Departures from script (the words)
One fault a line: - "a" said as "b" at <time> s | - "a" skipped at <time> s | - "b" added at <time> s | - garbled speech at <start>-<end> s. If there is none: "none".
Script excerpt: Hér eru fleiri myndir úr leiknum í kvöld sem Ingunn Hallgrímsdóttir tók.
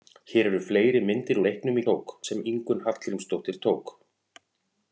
- "úr" skipped at 1.4 s
- "kvöld" said as "tók" at 1.9 s